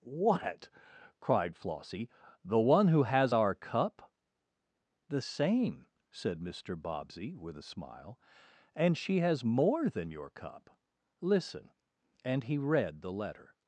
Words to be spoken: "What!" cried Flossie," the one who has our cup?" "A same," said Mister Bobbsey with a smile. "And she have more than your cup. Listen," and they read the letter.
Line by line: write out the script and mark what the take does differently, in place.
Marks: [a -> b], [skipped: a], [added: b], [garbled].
"What!" cried Flossie," the one who has our cup?" ["A -> The] same," said Mister Bobbsey with a smile. "And she [have -> has] more than your cup. Listen," and [they -> he] read the letter.